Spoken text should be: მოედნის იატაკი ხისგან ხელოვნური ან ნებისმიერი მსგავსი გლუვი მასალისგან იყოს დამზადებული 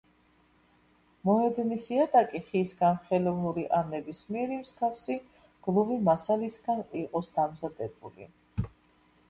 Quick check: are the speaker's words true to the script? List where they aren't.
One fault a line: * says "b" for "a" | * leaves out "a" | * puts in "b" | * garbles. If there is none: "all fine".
all fine